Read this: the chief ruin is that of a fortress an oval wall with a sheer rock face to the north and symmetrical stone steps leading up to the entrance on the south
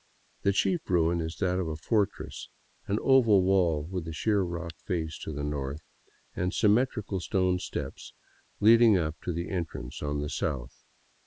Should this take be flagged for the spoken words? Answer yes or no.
no